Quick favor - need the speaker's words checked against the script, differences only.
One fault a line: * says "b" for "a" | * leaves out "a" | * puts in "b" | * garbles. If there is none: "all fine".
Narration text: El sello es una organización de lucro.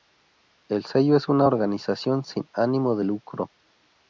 * puts in "sin ánimo"